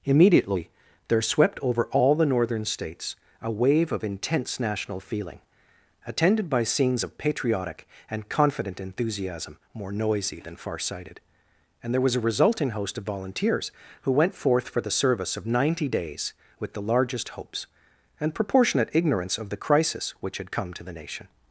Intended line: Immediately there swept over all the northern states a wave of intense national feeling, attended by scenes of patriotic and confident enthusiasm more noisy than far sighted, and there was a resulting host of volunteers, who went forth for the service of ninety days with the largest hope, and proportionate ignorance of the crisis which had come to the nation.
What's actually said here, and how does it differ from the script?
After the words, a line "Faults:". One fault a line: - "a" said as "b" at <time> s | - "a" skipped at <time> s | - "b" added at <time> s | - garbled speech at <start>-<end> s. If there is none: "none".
Immediately there swept over all the northern states a wave of intense national feeling, attended by scenes of patriotic and confident enthusiasm more noisy than far sighted, and there was a resulting host of volunteers, who went forth for the service of ninety days with the largest hopes, and proportionate ignorance of the crisis which had come to the nation.
Faults:
- "hope" said as "hopes" at 17.3 s